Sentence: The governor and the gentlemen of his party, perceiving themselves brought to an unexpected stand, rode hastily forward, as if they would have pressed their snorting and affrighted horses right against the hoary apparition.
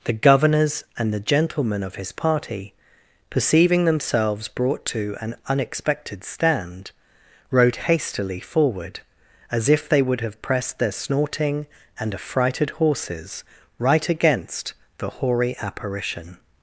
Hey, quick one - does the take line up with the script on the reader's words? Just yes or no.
no